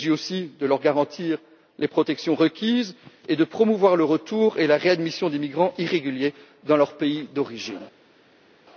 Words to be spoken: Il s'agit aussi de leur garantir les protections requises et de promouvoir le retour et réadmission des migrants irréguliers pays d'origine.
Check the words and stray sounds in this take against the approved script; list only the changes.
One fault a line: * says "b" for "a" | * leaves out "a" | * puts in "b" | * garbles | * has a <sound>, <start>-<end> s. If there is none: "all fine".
* puts in "la"
* puts in "dans leur"